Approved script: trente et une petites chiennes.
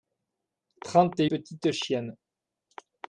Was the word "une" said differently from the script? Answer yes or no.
yes